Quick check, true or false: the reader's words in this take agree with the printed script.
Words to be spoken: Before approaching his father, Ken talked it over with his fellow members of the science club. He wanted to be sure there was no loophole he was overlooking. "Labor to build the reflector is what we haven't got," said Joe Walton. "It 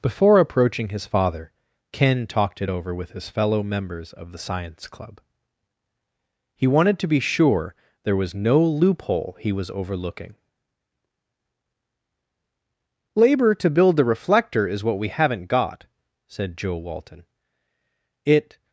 true